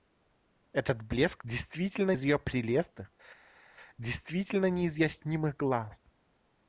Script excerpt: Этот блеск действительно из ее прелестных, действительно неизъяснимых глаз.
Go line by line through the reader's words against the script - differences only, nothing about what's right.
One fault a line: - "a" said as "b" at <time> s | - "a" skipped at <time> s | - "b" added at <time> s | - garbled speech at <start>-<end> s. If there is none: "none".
none